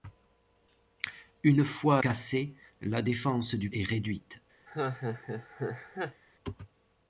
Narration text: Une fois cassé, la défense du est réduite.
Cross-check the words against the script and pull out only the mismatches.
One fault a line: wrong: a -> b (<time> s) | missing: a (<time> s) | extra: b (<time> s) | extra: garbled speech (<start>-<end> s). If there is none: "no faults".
no faults